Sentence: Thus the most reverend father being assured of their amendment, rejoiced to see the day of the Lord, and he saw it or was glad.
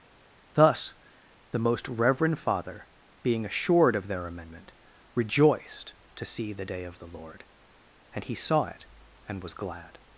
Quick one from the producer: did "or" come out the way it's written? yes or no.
no